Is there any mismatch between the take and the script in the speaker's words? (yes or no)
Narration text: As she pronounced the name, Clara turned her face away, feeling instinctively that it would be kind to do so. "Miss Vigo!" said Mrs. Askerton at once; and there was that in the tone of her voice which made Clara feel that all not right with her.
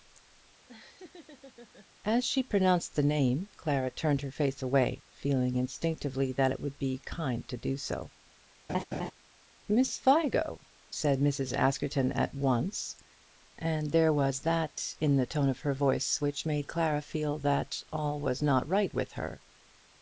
yes